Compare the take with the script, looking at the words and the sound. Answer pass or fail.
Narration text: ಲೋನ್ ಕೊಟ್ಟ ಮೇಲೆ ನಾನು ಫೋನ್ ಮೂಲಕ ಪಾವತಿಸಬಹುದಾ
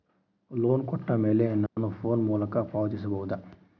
fail